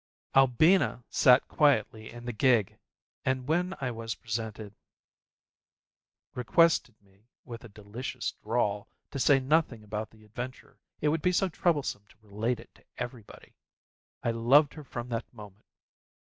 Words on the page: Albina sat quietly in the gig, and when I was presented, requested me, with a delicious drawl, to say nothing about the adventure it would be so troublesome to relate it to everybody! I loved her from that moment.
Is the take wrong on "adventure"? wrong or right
right